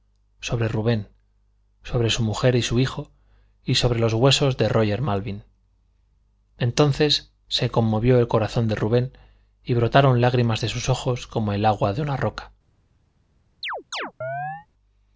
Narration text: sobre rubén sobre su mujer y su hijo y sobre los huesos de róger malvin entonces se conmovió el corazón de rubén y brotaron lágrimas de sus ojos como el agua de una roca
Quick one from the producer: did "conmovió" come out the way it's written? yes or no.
yes